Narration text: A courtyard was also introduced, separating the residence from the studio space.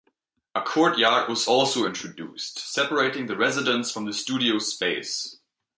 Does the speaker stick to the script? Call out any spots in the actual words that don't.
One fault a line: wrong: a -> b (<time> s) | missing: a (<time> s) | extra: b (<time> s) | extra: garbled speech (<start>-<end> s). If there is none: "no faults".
no faults